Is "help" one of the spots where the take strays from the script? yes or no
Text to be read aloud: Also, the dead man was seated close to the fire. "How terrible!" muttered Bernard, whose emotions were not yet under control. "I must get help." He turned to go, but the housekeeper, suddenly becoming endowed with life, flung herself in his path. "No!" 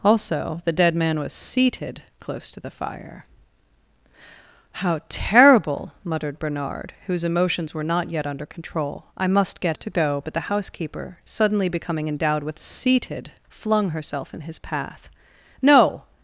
yes